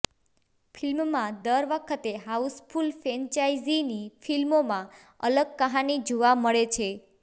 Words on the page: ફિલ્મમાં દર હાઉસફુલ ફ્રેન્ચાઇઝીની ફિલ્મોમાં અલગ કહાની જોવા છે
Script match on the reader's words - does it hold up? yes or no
no